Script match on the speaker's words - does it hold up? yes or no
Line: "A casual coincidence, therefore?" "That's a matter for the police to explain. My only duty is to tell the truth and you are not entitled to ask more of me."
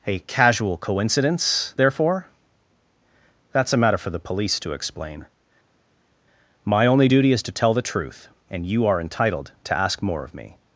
no